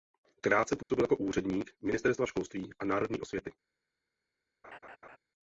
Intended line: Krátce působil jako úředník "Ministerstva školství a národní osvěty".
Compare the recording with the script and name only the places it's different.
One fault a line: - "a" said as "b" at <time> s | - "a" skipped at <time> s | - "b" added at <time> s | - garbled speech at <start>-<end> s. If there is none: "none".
none